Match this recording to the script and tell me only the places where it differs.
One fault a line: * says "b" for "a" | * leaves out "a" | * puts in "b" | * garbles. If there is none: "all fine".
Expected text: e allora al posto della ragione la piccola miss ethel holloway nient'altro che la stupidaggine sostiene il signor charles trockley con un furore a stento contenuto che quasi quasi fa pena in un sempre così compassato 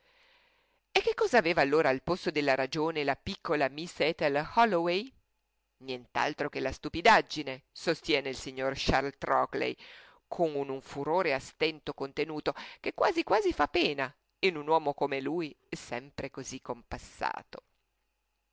* puts in "che cosa aveva"
* puts in "uomo come lui"